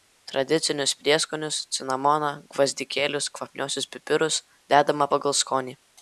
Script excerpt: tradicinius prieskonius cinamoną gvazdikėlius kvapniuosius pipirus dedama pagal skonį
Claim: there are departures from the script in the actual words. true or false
false